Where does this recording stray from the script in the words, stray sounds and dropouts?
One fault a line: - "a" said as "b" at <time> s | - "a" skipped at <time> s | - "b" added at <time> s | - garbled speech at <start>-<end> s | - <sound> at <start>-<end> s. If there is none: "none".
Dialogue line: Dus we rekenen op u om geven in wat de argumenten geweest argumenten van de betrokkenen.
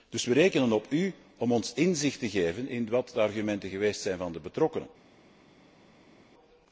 - "ons inzicht te" added at 1.5 s
- "argumenten" said as "zijn" at 4.0 s